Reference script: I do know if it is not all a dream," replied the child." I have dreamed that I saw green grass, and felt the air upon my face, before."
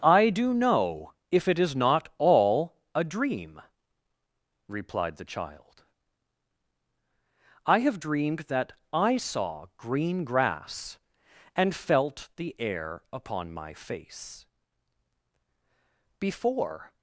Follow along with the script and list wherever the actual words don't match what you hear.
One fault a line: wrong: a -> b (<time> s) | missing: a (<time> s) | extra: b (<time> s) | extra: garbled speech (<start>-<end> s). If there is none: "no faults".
no faults